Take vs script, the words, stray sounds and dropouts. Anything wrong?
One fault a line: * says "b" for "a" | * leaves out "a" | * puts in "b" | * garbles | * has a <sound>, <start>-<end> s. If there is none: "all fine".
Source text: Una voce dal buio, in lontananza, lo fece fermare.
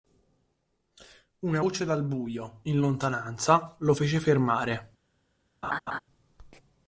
* has a laugh, 5.6-6.0 s